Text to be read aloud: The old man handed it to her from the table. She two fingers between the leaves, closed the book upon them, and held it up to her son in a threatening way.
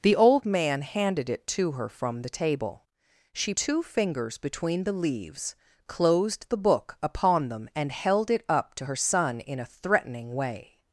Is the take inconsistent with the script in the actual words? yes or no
no